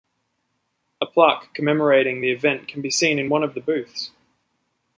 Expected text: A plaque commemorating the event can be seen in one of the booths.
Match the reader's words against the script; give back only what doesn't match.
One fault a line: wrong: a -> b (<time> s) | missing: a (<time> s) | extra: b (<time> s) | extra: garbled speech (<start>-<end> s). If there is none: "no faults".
no faults